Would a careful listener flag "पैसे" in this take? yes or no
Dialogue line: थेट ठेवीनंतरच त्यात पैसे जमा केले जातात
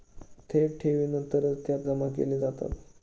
yes